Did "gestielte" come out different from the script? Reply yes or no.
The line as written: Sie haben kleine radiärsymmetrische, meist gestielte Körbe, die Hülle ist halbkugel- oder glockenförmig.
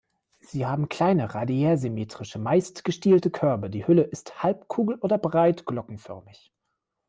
no